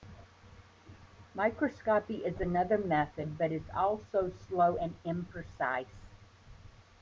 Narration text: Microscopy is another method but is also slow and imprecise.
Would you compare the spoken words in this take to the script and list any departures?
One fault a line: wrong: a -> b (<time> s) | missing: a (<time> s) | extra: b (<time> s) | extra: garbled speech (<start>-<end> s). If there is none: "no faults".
no faults